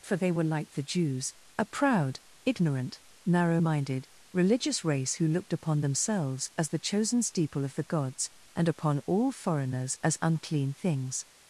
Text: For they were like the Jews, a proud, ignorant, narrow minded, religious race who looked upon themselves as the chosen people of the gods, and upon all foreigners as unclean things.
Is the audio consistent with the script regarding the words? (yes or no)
no